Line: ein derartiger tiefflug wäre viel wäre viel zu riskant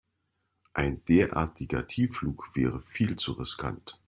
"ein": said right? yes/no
yes